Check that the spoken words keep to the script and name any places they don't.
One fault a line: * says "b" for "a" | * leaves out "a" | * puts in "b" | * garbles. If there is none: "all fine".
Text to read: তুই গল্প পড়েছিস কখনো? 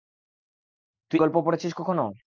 all fine